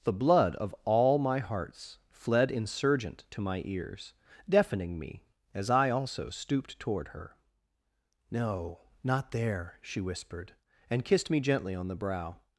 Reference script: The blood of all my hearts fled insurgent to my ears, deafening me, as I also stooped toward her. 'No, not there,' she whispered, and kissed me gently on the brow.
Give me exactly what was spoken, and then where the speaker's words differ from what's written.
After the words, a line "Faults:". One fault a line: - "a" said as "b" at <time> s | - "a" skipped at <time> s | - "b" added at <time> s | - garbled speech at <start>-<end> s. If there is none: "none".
The blood of all my hearts fled insurgent to my ears, deafening me, as I also stooped toward her. 'No, not there,' she whispered, and kissed me gently on the brow.
Faults:
none